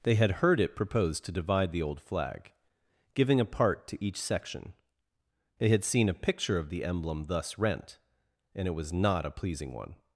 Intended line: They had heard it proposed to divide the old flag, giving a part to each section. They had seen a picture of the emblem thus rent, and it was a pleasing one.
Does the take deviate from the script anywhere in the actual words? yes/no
yes